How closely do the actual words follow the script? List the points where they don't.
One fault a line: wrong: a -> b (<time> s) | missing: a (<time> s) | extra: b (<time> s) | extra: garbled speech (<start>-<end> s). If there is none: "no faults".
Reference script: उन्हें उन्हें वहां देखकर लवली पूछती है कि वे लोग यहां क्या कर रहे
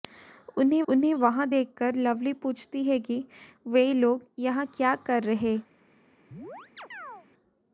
no faults